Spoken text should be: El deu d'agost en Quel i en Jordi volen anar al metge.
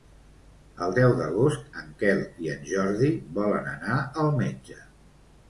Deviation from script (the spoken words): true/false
false